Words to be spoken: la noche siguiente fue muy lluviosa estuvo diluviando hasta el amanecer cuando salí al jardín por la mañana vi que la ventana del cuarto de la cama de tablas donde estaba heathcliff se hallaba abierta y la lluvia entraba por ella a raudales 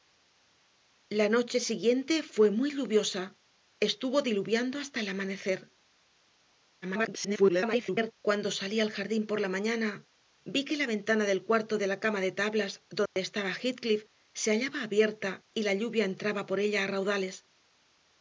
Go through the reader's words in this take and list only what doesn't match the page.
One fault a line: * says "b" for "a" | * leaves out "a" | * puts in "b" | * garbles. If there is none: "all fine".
* garbles